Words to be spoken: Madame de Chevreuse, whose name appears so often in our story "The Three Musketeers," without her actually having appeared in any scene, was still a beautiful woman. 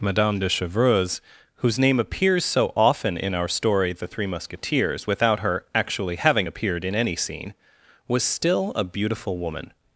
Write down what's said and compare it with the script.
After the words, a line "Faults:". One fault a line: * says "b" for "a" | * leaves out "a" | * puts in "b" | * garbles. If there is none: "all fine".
Madame de Chevreuse, whose name appears so often in our story "The Three Musketeers," without her actually having appeared in any scene, was still a beautiful woman.
Faults:
all fine